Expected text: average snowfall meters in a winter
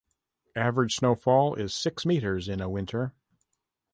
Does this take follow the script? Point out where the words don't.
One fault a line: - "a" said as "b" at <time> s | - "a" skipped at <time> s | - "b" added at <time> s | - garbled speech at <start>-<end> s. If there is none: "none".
- "is six" added at 1.5 s